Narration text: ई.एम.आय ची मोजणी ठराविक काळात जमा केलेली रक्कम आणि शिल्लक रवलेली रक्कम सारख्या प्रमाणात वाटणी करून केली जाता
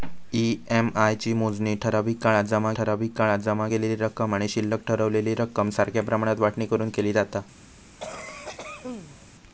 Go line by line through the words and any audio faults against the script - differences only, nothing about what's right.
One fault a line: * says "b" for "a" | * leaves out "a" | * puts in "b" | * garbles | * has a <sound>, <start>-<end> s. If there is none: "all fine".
* puts in "ठराविक काळात जमा"
* has a cough, 8.0-9.3 s